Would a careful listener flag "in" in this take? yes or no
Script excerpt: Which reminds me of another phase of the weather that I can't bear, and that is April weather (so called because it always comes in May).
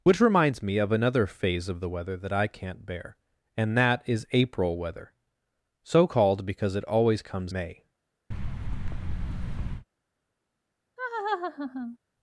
yes